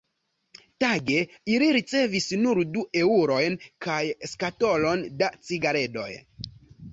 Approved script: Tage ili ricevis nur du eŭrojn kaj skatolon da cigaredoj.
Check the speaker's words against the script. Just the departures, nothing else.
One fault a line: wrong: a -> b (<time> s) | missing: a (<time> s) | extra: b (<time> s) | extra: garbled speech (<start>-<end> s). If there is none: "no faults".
no faults